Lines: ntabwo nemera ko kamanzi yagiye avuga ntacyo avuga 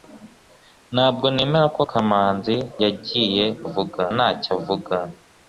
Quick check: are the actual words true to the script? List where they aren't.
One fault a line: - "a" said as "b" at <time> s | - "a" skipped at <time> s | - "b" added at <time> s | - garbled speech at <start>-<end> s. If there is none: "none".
none